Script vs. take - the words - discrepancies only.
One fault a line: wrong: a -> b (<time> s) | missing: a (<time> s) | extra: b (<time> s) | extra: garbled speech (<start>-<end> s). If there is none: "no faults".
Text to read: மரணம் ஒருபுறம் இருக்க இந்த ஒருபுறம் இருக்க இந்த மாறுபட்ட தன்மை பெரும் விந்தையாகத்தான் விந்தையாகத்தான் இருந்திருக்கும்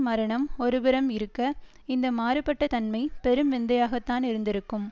missing: ஒருபுறம் இருக்க இந்த (2.1 s)
missing: விந்தையாகத்தான் (4.2 s)